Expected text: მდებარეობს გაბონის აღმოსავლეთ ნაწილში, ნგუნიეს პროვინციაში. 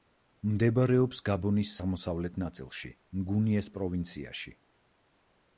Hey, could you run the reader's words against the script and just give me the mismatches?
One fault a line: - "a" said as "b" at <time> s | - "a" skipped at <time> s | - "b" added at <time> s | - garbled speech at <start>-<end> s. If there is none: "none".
none